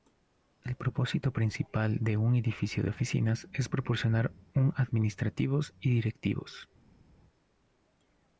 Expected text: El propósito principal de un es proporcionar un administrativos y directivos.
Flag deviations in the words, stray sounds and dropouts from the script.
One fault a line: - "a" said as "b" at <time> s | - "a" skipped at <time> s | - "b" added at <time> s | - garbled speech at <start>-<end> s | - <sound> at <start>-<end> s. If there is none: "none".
- "edificio de oficinas" added at 2.4 s